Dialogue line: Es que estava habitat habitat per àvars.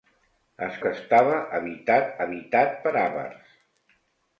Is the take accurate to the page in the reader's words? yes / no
yes